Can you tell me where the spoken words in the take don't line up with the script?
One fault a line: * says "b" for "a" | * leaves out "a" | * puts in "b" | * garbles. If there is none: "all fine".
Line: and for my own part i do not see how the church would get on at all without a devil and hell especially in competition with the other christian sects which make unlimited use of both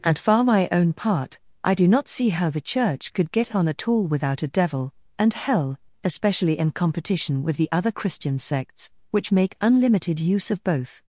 * says "could" for "would"